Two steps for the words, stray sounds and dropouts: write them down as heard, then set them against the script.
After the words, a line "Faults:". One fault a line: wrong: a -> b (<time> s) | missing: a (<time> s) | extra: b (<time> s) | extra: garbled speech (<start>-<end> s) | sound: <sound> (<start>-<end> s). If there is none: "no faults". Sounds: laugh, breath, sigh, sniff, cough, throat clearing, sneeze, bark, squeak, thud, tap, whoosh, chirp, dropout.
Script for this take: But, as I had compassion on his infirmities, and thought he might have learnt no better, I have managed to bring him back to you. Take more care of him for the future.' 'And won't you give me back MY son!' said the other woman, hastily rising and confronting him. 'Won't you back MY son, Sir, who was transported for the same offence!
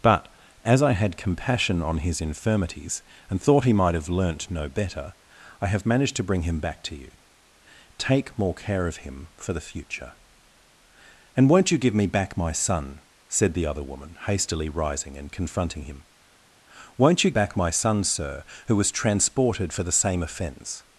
But, as I had compassion on his infirmities, and thought he might have learnt no better, I have managed to bring him back to you. Take more care of him for the future.' 'And won't you give me back MY son!' said the other woman, hastily rising and confronting him. 'Won't you back MY son, Sir, who was transported for the same offence!
Faults:
no faults